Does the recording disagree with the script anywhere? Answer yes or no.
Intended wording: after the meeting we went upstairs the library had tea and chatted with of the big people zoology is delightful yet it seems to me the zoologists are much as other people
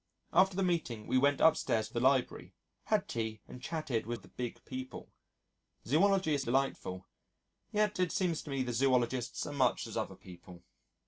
no